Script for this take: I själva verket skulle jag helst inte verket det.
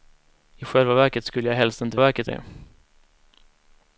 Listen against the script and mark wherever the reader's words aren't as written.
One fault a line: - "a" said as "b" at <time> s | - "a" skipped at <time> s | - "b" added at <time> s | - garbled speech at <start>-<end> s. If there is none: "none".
none